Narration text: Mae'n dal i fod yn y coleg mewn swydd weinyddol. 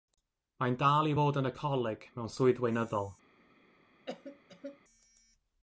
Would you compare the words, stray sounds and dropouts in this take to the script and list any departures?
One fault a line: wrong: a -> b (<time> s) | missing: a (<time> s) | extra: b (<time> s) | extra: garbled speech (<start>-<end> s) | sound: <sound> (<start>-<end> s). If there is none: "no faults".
sound: cough (4.1-4.8 s)